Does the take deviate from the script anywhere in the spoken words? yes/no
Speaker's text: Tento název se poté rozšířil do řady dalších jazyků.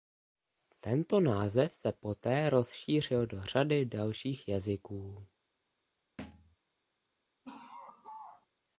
no